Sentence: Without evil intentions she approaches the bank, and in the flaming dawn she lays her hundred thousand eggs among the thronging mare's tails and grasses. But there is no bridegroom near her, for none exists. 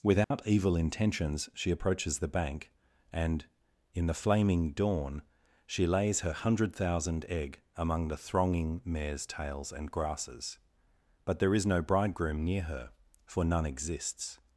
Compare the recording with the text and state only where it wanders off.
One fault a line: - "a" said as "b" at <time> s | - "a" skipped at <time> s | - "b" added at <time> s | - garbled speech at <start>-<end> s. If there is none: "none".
- "eggs" said as "egg" at 7.3 s